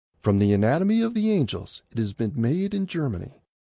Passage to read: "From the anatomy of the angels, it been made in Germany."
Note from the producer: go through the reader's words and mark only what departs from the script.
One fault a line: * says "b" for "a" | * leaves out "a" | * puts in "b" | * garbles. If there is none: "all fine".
* puts in "has"